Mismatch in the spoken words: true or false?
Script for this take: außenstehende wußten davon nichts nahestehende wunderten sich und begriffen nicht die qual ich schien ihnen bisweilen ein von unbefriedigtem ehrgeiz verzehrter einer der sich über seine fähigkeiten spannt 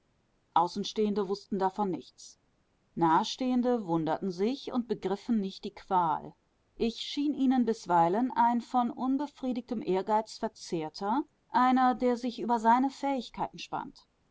false